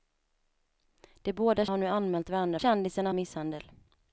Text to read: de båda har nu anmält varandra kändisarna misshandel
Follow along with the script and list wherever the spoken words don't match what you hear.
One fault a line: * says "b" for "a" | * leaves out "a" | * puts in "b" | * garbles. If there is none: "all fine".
all fine